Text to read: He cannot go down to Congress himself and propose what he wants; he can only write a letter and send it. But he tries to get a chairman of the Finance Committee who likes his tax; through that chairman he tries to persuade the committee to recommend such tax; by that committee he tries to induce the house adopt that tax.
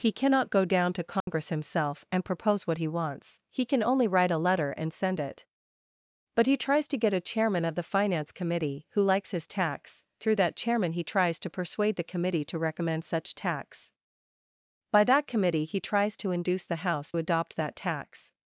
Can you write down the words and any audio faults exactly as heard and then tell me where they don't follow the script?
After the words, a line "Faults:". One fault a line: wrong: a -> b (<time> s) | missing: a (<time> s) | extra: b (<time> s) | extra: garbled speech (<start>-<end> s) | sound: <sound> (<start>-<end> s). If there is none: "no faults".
He cannot go down to Congress himself and propose what he wants; he can only write a letter and send it. But he tries to get a chairman of the Finance Committee who likes his tax; through that chairman he tries to persuade the committee to recommend such tax; by that committee he tries to induce the house adopt that tax.
Faults:
sound: dropout (1.2-1.3 s)